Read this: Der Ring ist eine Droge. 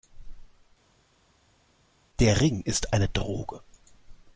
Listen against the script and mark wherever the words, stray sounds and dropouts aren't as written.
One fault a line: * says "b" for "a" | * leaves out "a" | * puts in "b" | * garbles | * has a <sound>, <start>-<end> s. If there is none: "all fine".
all fine